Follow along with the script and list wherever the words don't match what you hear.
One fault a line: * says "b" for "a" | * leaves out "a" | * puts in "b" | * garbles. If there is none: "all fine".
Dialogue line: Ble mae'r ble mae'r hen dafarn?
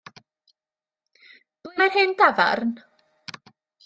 * leaves out "ble mae'r"